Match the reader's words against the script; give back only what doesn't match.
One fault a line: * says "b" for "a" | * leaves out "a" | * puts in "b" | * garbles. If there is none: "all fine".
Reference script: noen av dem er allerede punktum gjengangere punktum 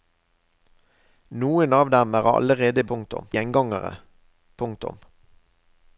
all fine